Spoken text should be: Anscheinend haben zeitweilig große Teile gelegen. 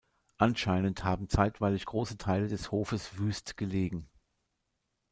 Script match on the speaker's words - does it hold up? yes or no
no